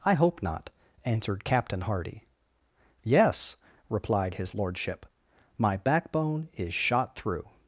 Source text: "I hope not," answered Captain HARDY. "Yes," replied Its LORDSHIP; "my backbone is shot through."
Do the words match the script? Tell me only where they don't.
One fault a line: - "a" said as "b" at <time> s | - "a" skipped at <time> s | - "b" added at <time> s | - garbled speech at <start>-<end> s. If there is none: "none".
- "Its" said as "His" at 4.3 s